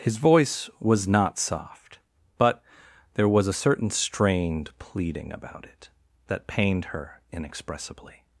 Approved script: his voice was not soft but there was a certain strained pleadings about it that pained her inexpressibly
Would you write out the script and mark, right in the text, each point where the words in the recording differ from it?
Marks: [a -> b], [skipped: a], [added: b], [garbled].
his voice was not soft but there was a certain strained [pleadings -> pleading] about it that pained her inexpressibly